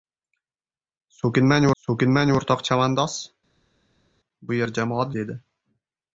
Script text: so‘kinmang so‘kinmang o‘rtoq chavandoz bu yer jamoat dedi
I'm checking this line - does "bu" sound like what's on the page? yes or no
yes